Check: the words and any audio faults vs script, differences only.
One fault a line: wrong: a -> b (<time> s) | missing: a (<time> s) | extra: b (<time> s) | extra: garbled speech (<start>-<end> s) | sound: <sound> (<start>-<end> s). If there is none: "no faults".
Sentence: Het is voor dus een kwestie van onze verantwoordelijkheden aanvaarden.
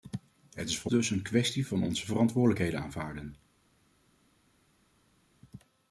no faults